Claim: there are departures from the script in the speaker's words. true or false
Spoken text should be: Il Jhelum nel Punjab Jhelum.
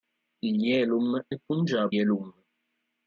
false